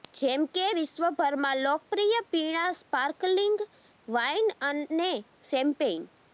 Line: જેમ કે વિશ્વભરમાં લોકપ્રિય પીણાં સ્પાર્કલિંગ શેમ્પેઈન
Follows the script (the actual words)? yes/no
no